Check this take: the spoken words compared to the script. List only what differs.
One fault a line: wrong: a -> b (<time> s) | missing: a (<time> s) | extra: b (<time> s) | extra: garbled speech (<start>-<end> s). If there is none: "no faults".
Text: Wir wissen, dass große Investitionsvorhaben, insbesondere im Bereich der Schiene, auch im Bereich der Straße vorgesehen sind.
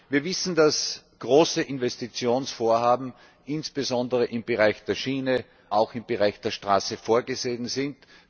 no faults